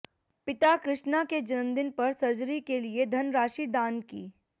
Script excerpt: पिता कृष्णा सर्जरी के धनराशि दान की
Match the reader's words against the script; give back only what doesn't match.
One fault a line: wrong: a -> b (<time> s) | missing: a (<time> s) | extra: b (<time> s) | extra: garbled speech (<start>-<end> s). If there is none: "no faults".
extra: के जन्मदिन पर (1.2 s)
extra: लिए (2.8 s)